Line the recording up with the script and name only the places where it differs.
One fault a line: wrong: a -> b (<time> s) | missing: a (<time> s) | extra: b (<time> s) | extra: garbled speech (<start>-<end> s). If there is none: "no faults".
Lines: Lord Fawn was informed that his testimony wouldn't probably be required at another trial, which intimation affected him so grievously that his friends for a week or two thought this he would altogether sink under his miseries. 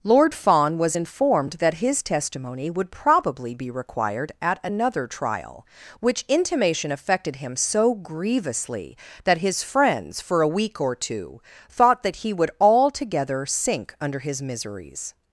wrong: wouldn't -> would (2.7 s)
wrong: this -> that (12.0 s)